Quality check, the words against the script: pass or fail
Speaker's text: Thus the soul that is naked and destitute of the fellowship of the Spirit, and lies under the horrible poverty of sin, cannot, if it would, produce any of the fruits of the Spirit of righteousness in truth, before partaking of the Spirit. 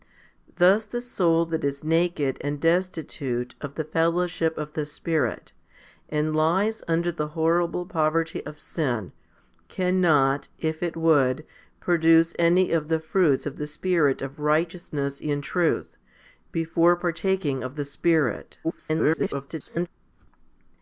fail